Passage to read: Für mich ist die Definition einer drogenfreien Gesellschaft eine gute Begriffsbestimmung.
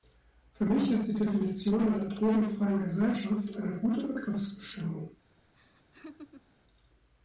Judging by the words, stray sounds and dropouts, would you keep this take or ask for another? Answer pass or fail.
fail